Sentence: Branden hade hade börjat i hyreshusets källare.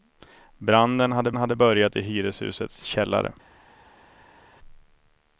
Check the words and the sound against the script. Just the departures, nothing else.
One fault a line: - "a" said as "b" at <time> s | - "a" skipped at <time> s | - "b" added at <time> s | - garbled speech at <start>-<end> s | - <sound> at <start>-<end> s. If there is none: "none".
none